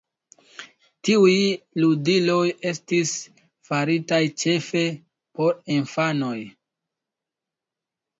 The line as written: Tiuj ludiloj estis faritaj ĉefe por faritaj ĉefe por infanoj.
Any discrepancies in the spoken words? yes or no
yes